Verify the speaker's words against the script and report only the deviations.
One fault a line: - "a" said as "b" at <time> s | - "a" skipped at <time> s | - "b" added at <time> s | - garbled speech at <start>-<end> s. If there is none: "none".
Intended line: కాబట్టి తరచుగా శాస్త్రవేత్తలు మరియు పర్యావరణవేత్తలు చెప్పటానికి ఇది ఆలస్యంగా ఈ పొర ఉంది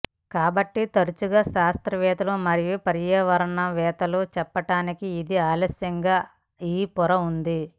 none